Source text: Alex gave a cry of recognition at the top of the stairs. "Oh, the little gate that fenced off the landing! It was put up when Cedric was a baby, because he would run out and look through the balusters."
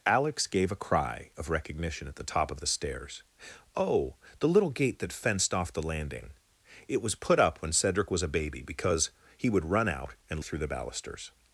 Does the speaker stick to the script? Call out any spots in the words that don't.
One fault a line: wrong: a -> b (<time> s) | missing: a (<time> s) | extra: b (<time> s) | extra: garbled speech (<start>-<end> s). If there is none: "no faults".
missing: look (10.4 s)